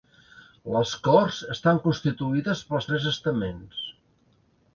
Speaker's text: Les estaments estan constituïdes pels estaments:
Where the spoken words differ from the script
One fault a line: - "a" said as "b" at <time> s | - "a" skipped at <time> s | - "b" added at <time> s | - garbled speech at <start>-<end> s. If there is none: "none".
- "estaments" said as "corts" at 1.1 s
- "tres" added at 2.9 s